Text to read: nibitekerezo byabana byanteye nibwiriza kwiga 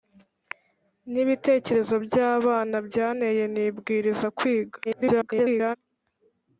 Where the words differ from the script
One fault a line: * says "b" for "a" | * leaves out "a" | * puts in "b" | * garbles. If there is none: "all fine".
* garbles